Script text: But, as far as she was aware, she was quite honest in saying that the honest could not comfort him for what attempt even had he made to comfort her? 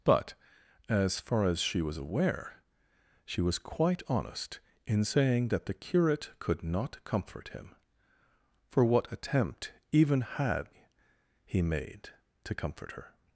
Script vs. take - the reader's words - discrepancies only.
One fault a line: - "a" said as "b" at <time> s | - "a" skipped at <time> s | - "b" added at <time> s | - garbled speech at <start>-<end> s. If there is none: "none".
- "honest" said as "curate" at 5.7 s